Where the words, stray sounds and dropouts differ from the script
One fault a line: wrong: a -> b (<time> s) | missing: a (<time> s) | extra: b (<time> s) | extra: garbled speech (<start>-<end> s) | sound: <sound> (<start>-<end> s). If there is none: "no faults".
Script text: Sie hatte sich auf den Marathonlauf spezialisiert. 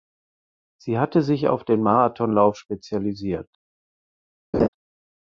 sound: laugh (4.5-4.7 s)